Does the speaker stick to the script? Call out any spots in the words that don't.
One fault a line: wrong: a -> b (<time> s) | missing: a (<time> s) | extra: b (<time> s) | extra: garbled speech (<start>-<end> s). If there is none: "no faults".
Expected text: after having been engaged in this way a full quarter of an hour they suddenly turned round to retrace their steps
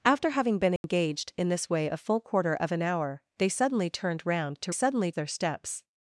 wrong: retrace -> suddenly (4.7 s)